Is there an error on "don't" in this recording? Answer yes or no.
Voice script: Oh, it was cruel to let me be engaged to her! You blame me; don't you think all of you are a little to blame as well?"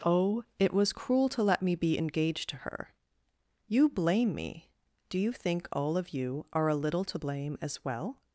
yes